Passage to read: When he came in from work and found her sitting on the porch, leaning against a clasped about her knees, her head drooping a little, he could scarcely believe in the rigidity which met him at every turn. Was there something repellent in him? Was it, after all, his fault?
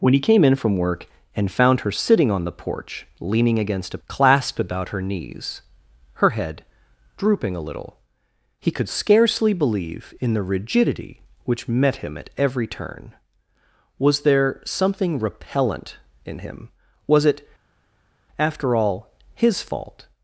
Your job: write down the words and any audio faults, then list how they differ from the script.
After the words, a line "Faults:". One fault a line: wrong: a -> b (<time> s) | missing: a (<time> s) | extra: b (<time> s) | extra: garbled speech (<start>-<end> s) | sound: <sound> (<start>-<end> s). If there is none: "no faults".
When he came in from work and found her sitting on the porch, leaning against a clasped about her knees, her head drooping a little, he could scarcely believe in the rigidity which met him at every turn. Was there something repellent in him? Was it, after all, his fault?
Faults:
no faults